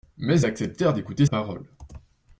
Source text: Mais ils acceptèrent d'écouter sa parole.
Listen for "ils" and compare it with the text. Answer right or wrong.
wrong